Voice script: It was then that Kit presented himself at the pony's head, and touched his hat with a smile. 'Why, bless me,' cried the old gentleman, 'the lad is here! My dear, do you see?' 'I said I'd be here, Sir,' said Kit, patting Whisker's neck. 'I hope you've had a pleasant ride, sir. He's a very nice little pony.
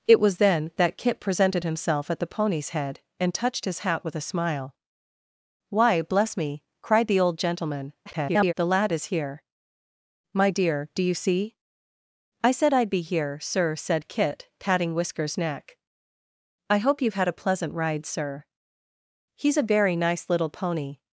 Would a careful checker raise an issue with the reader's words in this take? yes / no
yes